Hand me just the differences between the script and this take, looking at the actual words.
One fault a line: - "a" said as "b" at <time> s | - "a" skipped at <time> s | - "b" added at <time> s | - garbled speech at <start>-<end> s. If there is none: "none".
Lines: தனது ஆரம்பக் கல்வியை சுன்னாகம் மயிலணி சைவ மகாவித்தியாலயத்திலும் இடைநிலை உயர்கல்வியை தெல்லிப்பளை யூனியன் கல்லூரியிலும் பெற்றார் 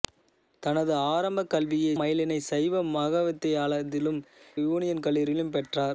- "சுன்னாகம்" skipped at 1.9 s
- "இடைநிலை உயர்கல்வியை தெல்லிப்பளை" skipped at 4.2 s